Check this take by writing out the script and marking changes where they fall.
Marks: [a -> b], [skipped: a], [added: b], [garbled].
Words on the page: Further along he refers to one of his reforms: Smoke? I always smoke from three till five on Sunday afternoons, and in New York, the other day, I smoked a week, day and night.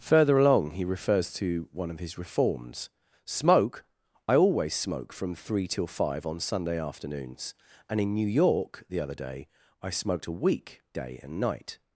Further along he refers to one of his reforms: Smoke? I always smoke from three till five on Sunday afternoons, and in New York, the other day, I smoked a week, day and night.